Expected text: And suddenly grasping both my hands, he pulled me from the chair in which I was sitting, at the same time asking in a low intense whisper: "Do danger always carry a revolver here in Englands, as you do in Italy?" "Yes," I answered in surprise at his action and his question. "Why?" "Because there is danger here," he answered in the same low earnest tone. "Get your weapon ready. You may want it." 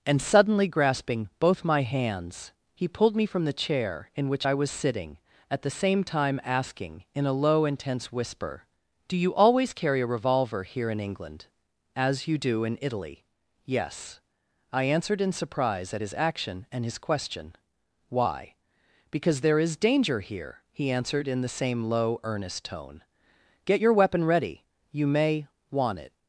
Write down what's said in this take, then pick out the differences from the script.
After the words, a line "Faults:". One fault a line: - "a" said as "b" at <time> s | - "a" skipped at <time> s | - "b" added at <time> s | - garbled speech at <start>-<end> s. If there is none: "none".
And suddenly grasping both my hands, he pulled me from the chair in which I was sitting, at the same time asking in a low intense whisper: "Do you always carry a revolver here in England, as you do in Italy?" "Yes," I answered in surprise at his action and his question. "Why?" "Because there is danger here," he answered in the same low earnest tone. "Get your weapon ready. You may want it."
Faults:
- "danger" said as "you" at 9.2 s
- "Englands" said as "England" at 11.0 s